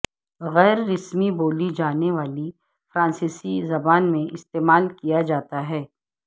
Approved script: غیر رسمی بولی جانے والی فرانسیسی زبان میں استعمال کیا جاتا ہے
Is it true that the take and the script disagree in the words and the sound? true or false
false